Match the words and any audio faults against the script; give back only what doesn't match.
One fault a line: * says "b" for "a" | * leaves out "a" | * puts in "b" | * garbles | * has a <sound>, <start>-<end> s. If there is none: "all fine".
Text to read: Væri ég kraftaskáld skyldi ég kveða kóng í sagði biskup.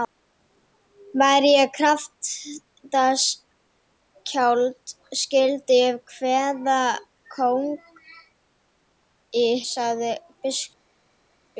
all fine